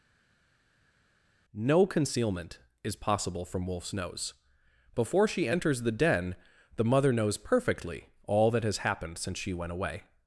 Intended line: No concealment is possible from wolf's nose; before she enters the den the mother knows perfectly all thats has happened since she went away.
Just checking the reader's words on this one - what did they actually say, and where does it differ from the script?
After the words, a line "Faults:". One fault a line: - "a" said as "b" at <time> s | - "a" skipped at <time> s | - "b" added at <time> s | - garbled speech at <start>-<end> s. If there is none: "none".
No concealment is possible from wolf's nose; before she enters the den the mother knows perfectly all that has happened since she went away.
Faults:
- "thats" said as "that" at 8.5 s